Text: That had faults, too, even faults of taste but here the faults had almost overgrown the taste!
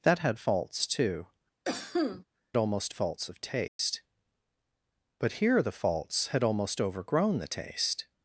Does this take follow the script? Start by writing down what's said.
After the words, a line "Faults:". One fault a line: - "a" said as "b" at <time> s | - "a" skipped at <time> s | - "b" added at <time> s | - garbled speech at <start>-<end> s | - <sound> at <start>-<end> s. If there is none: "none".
That had faults, too, almost faults of taste but here the faults had almost overgrown the taste!
Faults:
- cough at 1.6-2.2 s
- "even" said as "almost" at 2.6 s
- dropout at 3.7-3.8 s